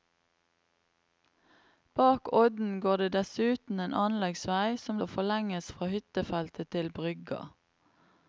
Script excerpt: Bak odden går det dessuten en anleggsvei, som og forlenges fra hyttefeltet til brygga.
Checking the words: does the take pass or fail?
pass